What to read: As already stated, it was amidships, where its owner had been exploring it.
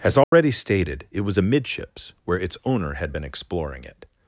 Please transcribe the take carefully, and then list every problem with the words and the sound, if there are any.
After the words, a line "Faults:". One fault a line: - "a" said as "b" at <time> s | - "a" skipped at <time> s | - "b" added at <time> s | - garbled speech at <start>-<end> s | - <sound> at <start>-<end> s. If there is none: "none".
As already stated, it was amidships, where its owner had been exploring it.
Faults:
- dropout at 0.2-0.3 s